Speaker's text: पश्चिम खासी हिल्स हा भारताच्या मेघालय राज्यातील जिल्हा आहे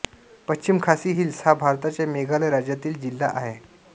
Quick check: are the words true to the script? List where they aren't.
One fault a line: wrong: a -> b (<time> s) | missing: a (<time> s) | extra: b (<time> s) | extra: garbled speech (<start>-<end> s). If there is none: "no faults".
no faults